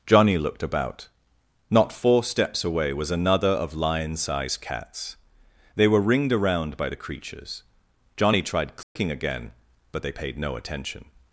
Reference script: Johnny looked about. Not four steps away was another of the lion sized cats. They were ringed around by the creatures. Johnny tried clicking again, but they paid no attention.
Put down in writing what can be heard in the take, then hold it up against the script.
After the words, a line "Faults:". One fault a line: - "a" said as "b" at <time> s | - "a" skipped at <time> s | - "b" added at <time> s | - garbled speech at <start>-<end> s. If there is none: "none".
Johnny looked about. Not four steps away was another of lion sized cats. They were ringed around by the creatures. Johnny tried clicking again, but they paid no attention.
Faults:
- "the" skipped at 3.7 s